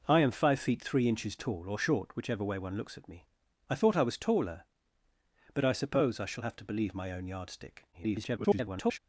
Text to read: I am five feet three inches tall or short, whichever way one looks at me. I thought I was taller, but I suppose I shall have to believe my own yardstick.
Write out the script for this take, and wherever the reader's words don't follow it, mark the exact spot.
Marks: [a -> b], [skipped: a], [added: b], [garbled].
I am five feet three inches tall or short, whichever way one looks at me. I thought I was taller, but I suppose I shall have to believe my own yardstick. [garbled]